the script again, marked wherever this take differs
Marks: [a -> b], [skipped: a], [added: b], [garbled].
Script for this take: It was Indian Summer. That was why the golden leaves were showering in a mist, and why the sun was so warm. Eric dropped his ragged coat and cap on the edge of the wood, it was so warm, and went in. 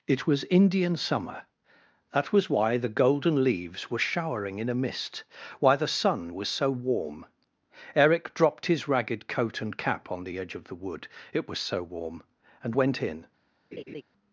It was Indian Summer. That was why the golden leaves were showering in a mist, [skipped: and] why the sun was so warm. Eric dropped his ragged coat and cap on the edge of the wood, it was so warm, and went in.